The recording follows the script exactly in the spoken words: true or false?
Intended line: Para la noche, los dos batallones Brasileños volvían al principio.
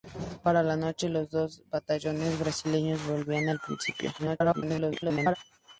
false